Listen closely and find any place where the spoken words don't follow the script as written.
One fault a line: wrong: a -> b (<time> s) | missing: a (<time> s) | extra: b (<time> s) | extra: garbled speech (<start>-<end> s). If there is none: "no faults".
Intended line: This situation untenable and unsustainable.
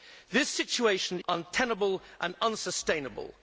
no faults